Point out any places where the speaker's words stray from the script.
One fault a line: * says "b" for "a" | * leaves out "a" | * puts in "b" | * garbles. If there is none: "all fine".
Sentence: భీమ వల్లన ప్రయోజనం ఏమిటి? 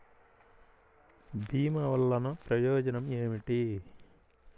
all fine